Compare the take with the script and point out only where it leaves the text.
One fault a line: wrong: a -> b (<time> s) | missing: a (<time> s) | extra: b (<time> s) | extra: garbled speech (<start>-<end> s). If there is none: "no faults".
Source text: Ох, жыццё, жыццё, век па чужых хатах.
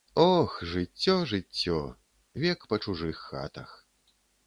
no faults